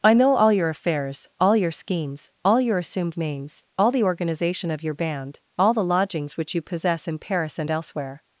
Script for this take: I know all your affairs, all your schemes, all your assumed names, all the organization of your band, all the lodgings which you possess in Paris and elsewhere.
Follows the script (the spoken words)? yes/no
yes